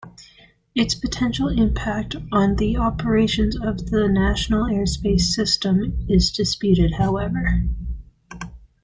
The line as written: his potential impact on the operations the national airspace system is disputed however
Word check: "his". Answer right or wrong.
wrong